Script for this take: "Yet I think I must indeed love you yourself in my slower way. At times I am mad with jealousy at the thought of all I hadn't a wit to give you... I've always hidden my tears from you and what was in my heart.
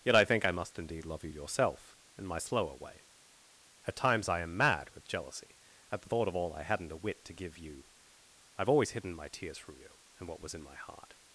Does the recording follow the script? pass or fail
pass